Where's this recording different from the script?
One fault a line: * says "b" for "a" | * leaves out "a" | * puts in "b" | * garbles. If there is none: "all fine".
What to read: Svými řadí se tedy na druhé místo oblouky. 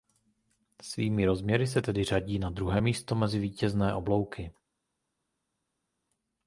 * says "rozměry" for "řadí"
* puts in "řadí"
* puts in "mezi vítězné"